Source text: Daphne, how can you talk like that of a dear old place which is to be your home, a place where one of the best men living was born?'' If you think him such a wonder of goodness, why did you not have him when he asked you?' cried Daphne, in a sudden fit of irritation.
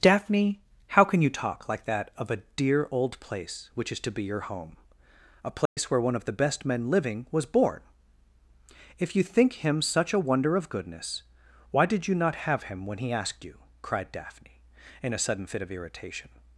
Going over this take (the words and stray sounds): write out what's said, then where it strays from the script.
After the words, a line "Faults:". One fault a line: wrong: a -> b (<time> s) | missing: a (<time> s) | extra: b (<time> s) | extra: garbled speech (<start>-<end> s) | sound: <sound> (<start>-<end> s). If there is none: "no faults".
Daphne, how can you talk like that of a dear old place which is to be your home, a place where one of the best men living was born?'' If you think him such a wonder of goodness, why did you not have him when he asked you?' cried Daphne, in a sudden fit of irritation.
Faults:
sound: dropout (5.7-5.8 s)